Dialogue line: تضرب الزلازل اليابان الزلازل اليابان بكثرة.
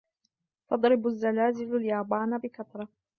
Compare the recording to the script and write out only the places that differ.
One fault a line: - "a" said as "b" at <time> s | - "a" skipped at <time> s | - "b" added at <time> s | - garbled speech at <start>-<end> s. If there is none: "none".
- "الزلازل اليابان" skipped at 2.4 s